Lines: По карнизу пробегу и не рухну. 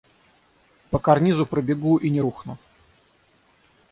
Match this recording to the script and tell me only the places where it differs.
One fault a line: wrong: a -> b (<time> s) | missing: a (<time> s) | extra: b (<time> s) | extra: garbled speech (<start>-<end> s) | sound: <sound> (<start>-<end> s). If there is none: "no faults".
no faults